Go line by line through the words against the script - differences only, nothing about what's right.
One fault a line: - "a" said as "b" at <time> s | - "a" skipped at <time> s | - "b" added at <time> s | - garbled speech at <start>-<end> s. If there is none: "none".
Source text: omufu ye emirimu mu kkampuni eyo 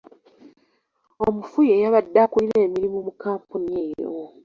- "yabadde akulira" added at 1.8 s